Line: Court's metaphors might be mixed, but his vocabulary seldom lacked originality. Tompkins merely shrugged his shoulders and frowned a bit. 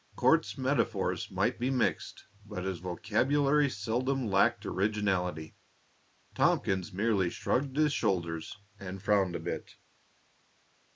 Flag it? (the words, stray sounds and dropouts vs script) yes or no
no